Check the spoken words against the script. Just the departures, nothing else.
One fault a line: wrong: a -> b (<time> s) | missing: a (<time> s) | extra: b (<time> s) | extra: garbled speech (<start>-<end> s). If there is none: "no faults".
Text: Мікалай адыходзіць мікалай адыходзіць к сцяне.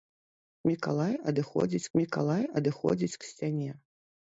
no faults